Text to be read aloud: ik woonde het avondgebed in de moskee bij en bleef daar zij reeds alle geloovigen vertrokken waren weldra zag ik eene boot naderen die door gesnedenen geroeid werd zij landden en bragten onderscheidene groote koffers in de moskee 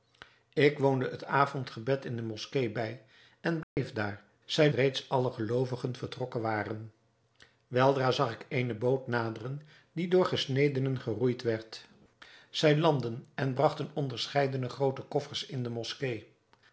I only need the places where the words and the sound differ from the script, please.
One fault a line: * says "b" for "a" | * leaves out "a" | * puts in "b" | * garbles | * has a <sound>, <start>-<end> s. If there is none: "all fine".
* has a dropout, 3.6-3.8 s